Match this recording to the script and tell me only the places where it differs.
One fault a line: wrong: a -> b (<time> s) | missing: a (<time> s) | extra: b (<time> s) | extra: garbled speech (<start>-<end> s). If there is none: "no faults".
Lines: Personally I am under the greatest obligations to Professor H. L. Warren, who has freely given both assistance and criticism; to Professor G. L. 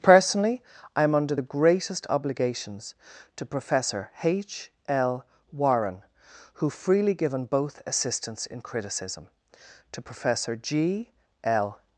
missing: has (6.7 s)
wrong: and -> in (8.5 s)